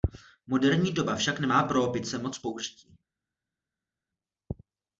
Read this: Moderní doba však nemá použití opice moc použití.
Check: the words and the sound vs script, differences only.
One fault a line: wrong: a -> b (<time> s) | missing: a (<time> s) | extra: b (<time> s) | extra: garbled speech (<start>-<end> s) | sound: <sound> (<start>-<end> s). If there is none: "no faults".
wrong: použití -> pro (1.6 s)